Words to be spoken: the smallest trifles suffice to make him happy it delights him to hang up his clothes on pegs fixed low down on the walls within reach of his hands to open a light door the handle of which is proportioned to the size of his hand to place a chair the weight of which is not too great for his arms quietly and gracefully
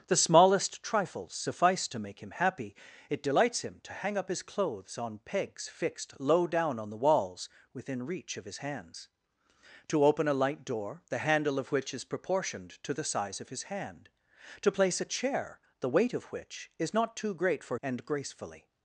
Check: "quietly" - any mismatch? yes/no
yes